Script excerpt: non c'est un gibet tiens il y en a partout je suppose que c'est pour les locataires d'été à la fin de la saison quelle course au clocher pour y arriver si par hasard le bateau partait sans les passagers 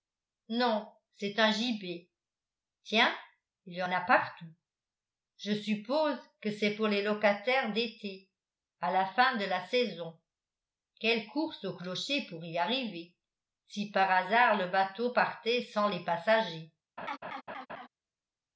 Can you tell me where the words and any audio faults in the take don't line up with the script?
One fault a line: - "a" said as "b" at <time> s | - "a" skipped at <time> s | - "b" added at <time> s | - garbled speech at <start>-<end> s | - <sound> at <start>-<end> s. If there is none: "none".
- laugh at 17.0-17.9 s